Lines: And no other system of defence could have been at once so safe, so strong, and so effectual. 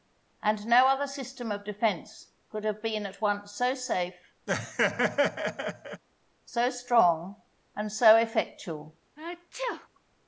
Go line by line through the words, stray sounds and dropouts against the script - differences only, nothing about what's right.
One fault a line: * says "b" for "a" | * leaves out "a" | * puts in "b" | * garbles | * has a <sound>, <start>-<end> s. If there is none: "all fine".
* has a laugh, 4.5-6.0 s
* has a sneeze, 9.2-9.9 s